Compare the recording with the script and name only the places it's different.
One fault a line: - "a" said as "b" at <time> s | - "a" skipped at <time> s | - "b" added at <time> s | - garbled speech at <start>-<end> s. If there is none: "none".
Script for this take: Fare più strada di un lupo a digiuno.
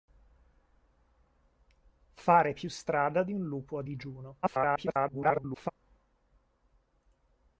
- garbled speech at 4.4-5.7 s